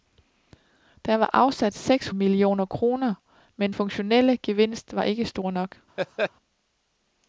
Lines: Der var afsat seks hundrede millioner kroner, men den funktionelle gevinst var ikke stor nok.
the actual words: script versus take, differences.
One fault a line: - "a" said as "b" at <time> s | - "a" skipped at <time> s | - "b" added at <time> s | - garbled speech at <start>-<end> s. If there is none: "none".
- "hundrede" skipped at 2.1 s
- "den" skipped at 3.7 s